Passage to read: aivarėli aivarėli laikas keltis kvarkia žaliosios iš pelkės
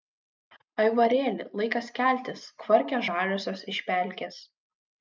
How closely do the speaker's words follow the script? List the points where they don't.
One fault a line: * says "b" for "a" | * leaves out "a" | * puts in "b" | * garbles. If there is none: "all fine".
* leaves out "aivarėli"